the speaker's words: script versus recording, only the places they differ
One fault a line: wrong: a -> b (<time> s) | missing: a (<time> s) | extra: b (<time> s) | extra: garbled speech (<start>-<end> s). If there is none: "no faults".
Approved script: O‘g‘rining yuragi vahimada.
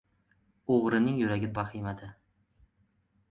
no faults